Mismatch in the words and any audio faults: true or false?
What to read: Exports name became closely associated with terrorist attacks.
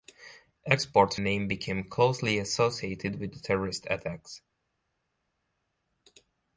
false